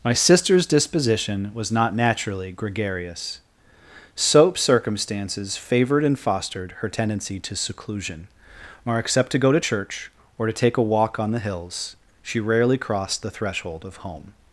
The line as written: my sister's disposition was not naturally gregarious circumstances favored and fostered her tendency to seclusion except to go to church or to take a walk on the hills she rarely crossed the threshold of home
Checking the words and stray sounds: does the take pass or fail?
fail